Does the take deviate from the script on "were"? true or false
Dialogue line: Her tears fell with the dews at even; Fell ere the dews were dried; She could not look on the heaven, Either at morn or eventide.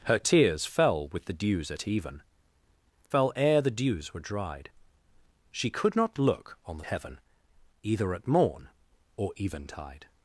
false